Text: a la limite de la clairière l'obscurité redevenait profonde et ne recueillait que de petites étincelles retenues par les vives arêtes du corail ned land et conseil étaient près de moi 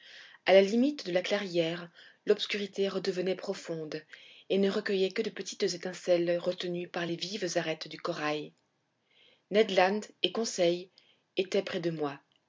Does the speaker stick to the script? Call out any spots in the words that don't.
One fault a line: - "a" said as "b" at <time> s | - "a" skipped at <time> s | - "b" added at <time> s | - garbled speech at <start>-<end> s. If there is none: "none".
none